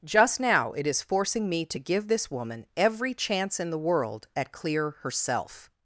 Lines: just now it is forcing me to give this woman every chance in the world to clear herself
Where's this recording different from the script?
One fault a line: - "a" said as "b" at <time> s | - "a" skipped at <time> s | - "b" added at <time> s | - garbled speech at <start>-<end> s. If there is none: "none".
- "to" said as "at" at 4.3 s